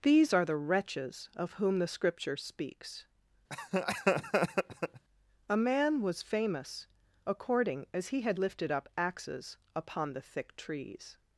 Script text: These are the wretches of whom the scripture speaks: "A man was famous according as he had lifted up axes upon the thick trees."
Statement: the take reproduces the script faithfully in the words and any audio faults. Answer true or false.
false